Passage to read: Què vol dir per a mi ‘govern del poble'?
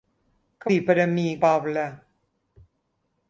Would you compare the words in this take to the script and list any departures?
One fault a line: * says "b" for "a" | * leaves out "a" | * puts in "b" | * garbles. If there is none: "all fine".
* leaves out "vol"
* leaves out "govern del"